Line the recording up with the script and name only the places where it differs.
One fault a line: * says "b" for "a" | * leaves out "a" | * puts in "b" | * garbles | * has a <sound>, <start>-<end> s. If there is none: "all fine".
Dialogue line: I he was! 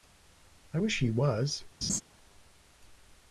* puts in "wish"
* has a laugh, 1.8-2.0 s